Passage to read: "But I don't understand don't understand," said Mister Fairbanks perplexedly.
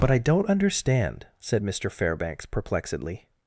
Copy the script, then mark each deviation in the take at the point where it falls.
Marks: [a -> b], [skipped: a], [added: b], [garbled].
"But I don't understand [skipped: don't understand,"] said Mister Fairbanks perplexedly.